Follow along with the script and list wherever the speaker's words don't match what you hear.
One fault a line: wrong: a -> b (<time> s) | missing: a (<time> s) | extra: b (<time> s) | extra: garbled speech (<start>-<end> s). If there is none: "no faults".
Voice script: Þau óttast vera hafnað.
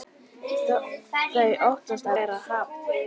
no faults